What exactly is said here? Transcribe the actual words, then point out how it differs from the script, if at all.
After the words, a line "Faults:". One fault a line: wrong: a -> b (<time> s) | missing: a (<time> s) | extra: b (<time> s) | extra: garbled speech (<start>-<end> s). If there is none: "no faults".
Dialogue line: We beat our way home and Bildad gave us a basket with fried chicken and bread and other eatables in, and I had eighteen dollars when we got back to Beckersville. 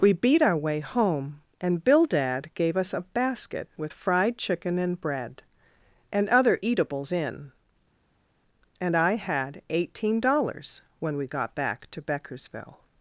We beat our way home and Bildad gave us a basket with fried chicken and bread and other eatables in, and I had eighteen dollars when we got back to Beckersville.
Faults:
no faults